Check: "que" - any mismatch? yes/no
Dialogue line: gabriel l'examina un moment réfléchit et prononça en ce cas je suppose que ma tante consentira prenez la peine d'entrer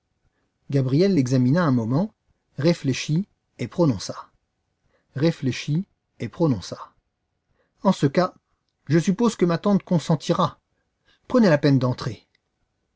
no